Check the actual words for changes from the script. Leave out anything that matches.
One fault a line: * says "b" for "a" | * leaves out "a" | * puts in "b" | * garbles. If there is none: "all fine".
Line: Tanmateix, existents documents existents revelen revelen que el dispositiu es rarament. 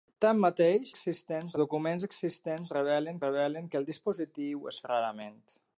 all fine